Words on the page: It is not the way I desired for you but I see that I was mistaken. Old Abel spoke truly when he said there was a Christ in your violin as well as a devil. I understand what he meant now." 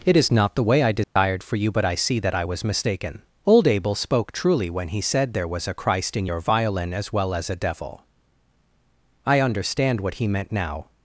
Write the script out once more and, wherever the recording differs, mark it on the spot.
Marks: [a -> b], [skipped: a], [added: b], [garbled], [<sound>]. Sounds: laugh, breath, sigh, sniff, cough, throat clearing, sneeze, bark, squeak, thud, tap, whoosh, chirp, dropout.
It is not the way I desired [dropout] for you but I see that I was mistaken. Old Abel spoke truly when he said there was a Christ in your violin as well as a devil. I understand what he meant now."